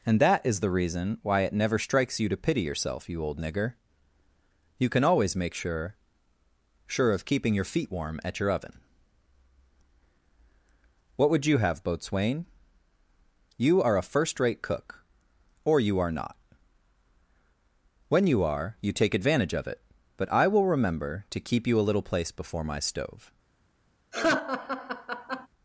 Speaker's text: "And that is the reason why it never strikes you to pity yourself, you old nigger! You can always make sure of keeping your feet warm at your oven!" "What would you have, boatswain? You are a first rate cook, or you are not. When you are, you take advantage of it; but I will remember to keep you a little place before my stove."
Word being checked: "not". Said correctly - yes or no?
yes